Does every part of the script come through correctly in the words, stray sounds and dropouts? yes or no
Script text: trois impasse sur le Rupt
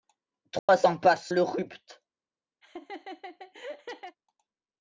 no